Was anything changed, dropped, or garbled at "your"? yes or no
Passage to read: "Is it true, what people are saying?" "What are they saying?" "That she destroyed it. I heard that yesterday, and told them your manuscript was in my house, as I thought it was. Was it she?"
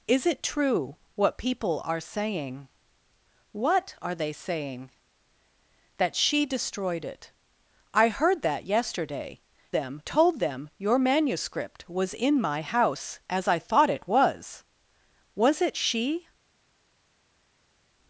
no